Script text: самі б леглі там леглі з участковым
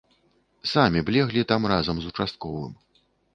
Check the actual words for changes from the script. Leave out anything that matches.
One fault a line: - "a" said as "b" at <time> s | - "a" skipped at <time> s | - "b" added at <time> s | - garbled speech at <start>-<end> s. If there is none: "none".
- "леглі" said as "разам" at 1.7 s